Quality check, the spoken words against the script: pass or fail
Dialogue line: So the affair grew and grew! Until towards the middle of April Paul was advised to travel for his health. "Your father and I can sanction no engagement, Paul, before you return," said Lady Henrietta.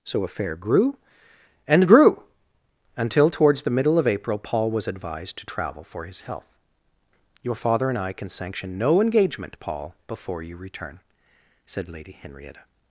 fail